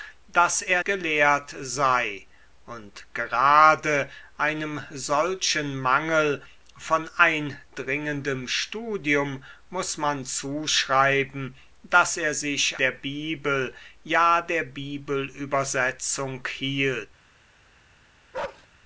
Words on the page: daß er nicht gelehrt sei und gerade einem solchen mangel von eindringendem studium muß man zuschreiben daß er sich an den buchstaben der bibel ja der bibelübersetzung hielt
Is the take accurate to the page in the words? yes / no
no